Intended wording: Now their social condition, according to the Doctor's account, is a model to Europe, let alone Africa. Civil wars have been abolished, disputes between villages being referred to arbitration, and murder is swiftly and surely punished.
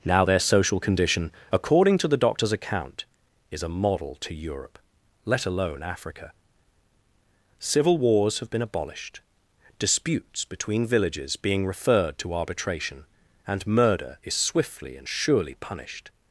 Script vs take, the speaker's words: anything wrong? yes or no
no